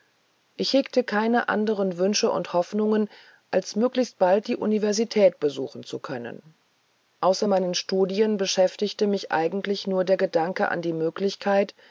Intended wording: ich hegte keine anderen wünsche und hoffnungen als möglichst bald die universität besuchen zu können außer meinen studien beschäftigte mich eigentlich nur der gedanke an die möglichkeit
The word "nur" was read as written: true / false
true